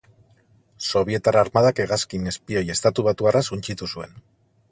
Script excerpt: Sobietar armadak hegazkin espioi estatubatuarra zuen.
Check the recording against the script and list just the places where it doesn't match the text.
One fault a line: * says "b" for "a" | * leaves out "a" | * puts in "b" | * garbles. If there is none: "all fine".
* puts in "suntsitu"